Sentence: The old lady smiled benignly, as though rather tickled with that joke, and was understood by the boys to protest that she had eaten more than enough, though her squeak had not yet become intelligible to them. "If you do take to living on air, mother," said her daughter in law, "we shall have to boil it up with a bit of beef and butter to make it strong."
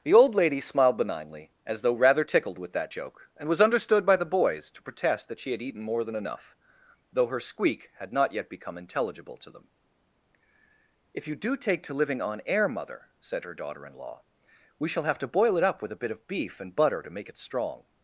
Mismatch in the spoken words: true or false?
false